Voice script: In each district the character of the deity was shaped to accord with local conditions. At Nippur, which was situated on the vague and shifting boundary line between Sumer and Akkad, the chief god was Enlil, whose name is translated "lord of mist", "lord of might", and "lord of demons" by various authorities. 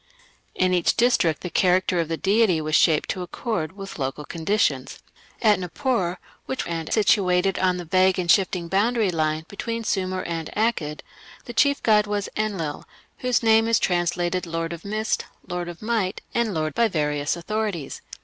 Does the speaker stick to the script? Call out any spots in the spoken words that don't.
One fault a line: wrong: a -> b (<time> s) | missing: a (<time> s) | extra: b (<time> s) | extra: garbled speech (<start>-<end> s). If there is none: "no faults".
wrong: was -> and (6.6 s)
missing: of demons (16.7 s)